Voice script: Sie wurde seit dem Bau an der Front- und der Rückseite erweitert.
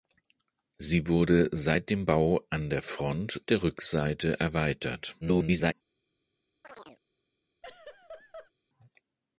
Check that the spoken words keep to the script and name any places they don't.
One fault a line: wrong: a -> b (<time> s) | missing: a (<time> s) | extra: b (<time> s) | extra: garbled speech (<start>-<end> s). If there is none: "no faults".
missing: und (3.4 s)
extra: garbled speech (5.2-5.7 s)